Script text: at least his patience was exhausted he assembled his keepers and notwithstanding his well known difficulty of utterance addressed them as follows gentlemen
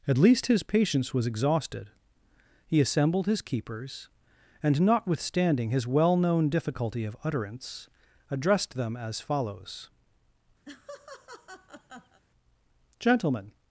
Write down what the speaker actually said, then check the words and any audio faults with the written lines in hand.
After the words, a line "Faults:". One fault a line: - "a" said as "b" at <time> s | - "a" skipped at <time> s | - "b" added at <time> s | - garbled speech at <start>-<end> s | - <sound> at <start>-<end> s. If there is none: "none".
at least his patience was exhausted he assembled his keepers and notwithstanding his well known difficulty of utterance addressed them as follows gentlemen
Faults:
- laugh at 10.7-12.2 s